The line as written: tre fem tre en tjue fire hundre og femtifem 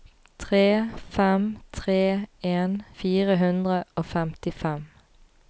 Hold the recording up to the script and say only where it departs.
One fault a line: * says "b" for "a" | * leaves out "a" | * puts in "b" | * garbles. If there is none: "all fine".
* leaves out "tjue"